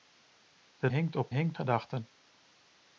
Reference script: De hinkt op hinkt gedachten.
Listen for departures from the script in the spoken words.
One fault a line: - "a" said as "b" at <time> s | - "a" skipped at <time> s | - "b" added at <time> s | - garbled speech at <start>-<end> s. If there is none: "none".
none